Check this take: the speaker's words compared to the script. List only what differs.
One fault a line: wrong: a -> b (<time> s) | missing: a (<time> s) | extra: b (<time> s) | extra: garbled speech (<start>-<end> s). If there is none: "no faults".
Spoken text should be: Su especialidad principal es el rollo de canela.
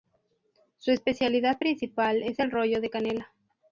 no faults